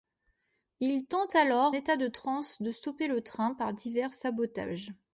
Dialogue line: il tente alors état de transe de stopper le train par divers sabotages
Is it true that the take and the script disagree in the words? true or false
false